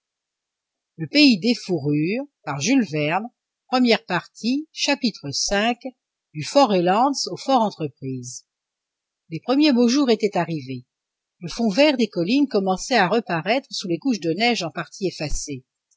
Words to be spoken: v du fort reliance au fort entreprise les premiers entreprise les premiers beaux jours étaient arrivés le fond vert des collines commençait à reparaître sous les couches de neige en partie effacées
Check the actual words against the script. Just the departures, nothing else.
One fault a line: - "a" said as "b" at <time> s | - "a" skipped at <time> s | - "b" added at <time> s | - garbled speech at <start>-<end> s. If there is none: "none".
- "entreprise les premiers" skipped at 9.7 s